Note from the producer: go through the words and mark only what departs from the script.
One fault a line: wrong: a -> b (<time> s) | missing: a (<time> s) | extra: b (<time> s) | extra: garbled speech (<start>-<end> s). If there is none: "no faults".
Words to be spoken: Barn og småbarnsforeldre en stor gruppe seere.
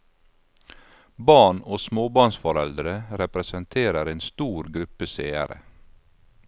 extra: representerer (3.2 s)